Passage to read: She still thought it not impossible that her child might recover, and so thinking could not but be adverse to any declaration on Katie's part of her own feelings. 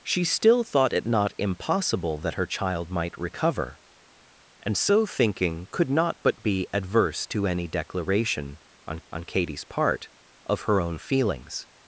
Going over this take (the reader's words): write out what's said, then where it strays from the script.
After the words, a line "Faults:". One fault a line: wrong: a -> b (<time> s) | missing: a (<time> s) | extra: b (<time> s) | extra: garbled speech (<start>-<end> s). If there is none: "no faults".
She still thought it not impossible that her child might recover, and so thinking could not but be adverse to any declaration on on Katie's part of her own feelings.
Faults:
extra: on (9.1 s)